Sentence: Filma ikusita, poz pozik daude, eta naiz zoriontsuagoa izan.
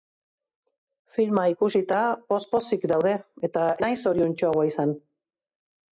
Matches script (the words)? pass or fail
pass